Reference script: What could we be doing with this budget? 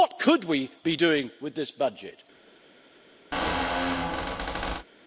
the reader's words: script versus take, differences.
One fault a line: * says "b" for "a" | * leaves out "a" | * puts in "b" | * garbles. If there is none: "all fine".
all fine